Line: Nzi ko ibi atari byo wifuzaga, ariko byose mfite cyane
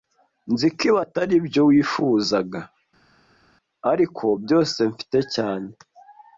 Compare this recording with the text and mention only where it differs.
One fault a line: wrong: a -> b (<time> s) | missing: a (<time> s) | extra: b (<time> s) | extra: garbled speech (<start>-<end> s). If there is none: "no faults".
no faults